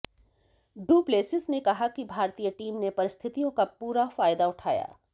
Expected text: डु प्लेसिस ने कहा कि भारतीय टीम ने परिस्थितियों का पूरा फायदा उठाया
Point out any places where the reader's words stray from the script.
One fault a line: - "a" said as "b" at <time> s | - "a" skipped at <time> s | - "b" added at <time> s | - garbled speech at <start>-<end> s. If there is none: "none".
none